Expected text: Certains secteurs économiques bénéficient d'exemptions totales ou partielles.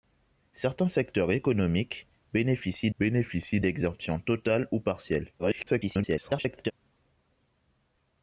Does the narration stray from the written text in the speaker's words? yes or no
yes